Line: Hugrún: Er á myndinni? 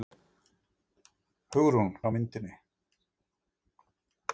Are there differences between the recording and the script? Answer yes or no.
no